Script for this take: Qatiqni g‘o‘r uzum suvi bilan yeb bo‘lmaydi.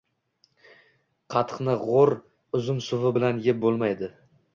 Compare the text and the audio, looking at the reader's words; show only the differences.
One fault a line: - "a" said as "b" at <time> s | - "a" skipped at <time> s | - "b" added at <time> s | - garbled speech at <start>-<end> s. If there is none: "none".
none